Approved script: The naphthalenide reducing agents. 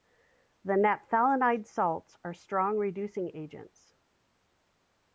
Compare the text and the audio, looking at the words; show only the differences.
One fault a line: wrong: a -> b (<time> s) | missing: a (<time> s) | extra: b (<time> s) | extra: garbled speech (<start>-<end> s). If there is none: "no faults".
extra: salts are strong (1.7 s)